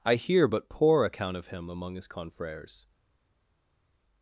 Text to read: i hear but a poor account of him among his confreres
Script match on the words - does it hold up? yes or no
no